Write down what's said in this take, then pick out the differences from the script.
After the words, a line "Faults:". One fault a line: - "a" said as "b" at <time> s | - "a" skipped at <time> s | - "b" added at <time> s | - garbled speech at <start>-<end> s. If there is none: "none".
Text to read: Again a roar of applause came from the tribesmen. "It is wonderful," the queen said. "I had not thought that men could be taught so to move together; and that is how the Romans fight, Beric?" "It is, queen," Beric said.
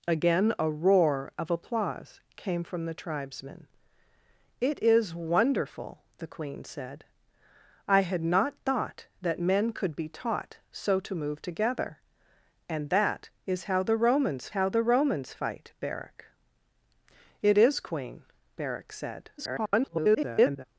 Again a roar of applause came from the tribesmen. "It is wonderful," the queen said. "I had not thought that men could be taught so to move together; and that is how the Romans how the Romans fight, Beric?" "It is, queen," Beric said. [garbled]
Faults:
- "how the Romans" added at 14.5 s
- garbled speech at 19.4-20.6 s